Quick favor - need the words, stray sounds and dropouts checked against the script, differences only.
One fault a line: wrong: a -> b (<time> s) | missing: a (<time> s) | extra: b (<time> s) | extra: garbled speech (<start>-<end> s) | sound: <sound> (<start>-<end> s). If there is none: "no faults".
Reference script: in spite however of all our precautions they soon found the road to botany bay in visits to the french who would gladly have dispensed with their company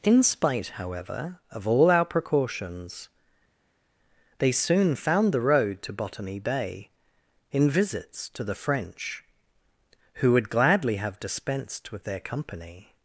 no faults